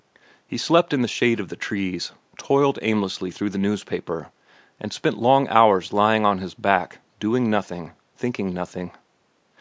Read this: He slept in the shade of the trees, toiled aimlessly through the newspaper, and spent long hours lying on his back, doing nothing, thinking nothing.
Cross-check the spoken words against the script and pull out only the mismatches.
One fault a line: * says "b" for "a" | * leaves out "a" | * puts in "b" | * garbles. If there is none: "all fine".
all fine